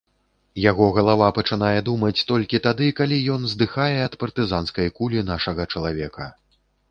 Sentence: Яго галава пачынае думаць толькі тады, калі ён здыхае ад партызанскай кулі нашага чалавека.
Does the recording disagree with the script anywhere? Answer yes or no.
no